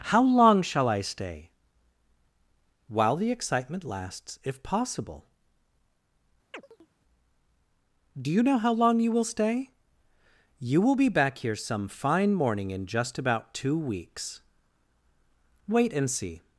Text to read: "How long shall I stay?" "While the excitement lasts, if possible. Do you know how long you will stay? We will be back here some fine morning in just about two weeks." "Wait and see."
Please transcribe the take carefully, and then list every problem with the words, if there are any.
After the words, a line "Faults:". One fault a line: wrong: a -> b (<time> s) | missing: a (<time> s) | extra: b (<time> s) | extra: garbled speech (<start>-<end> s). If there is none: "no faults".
"How long shall I stay?" "While the excitement lasts, if possible. Do you know how long you will stay? You will be back here some fine morning in just about two weeks." "Wait and see."
Faults:
wrong: We -> You (10.6 s)